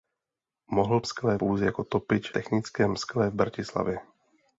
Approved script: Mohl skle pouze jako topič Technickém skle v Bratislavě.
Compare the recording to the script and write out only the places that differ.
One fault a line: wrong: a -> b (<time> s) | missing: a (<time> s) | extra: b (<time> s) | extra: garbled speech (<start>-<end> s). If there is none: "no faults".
no faults